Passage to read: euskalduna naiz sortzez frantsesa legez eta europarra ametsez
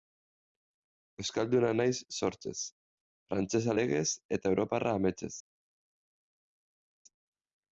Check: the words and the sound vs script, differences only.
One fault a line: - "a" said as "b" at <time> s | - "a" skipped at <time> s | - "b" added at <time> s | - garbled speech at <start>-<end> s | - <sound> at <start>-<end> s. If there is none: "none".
none